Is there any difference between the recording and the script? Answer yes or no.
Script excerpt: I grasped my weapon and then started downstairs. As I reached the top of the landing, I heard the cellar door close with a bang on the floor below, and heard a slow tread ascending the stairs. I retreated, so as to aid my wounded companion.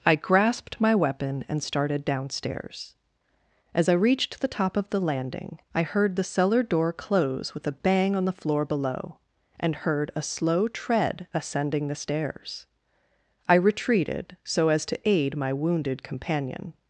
yes